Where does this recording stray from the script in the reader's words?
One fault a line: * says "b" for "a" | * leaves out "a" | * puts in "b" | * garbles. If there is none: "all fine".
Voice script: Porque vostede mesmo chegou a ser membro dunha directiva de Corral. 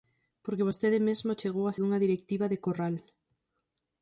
* leaves out "ser membro"